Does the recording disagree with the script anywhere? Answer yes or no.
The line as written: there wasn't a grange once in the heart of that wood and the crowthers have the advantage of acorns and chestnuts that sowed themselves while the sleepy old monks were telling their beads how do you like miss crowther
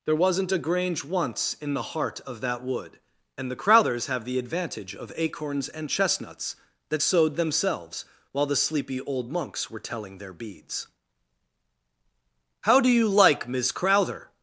no